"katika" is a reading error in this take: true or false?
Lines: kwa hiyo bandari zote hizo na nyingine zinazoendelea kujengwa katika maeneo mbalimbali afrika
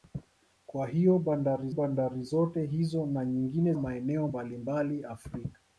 true